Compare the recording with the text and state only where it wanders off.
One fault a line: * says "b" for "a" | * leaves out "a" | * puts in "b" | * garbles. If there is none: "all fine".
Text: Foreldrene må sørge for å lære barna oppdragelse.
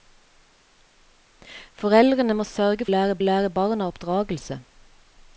* says "lære" for "for"